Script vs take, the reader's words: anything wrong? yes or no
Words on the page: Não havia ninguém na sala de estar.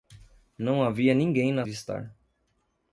yes